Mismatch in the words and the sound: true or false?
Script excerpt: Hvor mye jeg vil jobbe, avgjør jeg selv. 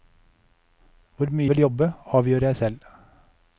true